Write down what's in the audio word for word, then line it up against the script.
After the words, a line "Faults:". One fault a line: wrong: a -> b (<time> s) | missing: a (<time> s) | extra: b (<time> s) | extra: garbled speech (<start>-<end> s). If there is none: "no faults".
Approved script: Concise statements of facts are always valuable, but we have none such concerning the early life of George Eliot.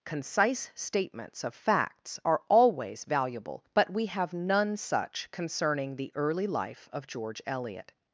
Concise statements of facts are always valuable, but we have none such concerning the early life of George Eliot.
Faults:
no faults